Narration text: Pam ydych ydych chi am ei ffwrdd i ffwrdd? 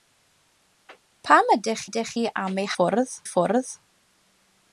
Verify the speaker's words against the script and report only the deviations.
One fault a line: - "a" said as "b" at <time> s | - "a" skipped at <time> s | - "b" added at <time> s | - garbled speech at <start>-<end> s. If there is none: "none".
none